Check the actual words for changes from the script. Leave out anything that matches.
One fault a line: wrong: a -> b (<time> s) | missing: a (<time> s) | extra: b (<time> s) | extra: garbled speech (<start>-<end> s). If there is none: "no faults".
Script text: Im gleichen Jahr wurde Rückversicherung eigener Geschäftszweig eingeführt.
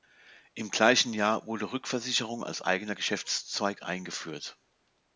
extra: als (2.4 s)